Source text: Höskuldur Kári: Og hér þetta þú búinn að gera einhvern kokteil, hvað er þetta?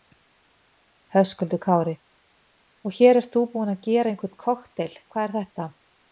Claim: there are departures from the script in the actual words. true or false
true